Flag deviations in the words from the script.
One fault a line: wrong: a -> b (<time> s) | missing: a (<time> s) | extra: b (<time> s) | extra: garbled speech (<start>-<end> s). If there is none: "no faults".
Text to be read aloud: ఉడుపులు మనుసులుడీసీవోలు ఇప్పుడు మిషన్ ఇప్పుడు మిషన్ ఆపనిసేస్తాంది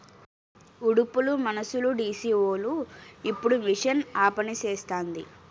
missing: ఇప్పుడు మిషన్ (4.0 s)